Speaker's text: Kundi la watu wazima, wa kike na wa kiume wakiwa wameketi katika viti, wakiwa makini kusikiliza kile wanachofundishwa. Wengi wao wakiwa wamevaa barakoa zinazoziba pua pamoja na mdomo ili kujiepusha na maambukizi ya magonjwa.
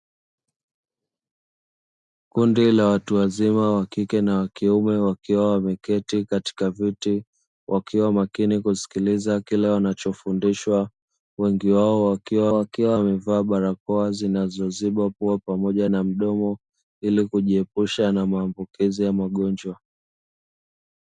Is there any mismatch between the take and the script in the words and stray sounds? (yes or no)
yes